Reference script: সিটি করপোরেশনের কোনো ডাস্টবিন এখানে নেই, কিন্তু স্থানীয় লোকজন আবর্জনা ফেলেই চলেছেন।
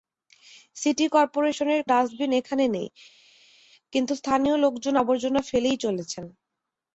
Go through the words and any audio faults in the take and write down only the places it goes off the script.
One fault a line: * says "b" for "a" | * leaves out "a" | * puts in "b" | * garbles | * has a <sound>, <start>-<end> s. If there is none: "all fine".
* leaves out "কোনো"